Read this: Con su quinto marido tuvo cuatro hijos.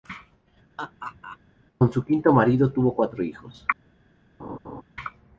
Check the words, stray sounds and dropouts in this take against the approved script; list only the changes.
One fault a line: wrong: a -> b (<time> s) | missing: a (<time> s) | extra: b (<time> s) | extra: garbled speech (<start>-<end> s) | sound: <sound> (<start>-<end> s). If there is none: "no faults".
sound: laugh (0.8-1.4 s)
sound: laugh (4.4-4.8 s)